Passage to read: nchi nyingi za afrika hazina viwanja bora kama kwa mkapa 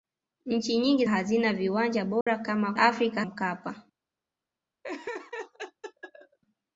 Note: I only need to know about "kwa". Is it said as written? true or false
false